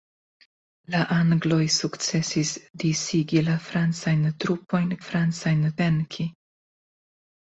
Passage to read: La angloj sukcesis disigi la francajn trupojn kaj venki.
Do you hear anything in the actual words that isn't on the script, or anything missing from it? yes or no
yes